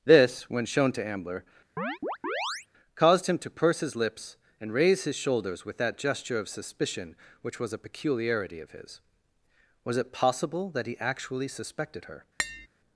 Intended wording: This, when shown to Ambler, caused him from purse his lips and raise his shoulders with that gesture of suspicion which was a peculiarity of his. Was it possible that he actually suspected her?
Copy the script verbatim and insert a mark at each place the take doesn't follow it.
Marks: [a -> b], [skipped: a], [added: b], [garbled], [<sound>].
This, when shown to Ambler, [chirp] caused him [from -> to] purse his lips and raise his shoulders with that gesture of suspicion which was a peculiarity of his. Was it possible that he actually suspected her? [tap]